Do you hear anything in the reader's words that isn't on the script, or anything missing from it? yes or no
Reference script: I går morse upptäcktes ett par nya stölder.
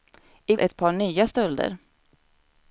yes